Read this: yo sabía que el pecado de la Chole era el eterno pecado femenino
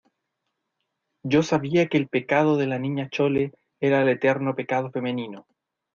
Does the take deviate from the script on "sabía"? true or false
false